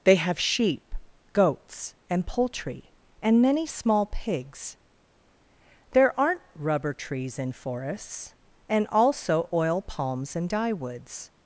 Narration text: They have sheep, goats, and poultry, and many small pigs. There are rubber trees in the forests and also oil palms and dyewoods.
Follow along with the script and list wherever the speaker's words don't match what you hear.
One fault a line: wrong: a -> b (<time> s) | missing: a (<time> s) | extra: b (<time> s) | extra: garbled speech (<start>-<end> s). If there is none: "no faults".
wrong: are -> aren't (6.2 s)
missing: the (7.5 s)